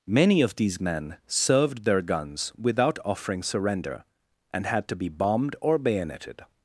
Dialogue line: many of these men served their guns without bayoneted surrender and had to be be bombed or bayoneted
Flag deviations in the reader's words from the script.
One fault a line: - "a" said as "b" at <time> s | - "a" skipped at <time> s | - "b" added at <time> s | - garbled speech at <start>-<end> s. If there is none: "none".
- "bayoneted" said as "offering" at 3.0 s
- "be" skipped at 5.1 s